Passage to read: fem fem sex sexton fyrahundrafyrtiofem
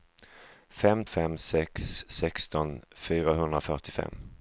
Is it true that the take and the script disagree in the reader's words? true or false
false